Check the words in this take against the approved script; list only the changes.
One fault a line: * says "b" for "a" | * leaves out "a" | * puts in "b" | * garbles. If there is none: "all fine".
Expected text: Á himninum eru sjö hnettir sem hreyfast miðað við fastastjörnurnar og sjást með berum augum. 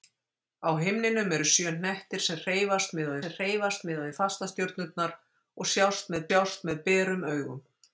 * puts in "sem hreyfast miðað"
* puts in "sjást með"